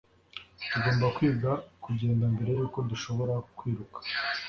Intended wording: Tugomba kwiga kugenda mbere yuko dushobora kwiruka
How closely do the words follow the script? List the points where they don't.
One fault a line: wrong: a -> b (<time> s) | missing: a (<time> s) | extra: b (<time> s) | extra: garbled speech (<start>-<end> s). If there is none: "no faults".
no faults